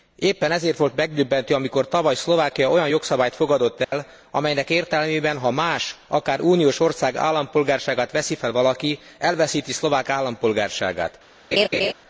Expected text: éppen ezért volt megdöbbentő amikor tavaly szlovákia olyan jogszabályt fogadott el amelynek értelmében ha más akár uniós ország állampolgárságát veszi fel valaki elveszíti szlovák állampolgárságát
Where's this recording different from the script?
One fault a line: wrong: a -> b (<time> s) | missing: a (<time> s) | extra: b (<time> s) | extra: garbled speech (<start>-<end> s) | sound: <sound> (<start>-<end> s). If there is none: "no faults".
sound: dropout (3.8-3.9 s)
sound: laugh (11.5-11.9 s)